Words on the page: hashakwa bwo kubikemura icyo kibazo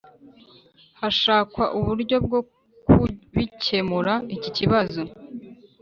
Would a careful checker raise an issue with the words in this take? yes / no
yes